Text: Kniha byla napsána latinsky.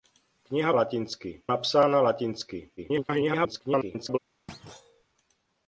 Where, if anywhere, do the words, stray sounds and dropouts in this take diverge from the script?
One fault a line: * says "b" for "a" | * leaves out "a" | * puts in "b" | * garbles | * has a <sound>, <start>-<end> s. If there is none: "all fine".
* says "latinsky" for "byla"
* garbles
* has a thud, 4.5-5.0 s